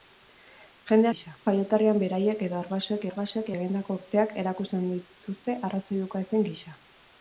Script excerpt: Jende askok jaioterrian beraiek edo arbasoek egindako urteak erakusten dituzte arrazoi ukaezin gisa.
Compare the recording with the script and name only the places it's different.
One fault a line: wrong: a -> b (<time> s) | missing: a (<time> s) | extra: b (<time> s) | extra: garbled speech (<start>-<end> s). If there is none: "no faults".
wrong: askok -> gisa (1.1 s)
extra: arbasoek (3.1 s)